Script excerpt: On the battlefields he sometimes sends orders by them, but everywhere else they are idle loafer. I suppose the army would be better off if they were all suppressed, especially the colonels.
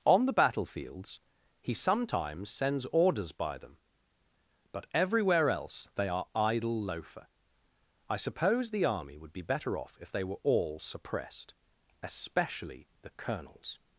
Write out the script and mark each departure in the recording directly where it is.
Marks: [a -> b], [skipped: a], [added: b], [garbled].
On the battlefields he sometimes sends orders by them, but everywhere else they are idle loafer. I suppose the army would be better off if they were all suppressed, especially the colonels.